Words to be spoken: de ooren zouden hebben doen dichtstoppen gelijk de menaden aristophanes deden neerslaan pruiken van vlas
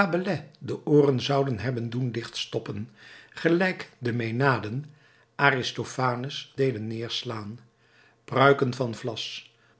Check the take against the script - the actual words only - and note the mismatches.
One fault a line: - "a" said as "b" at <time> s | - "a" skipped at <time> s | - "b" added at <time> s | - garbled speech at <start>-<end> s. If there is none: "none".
none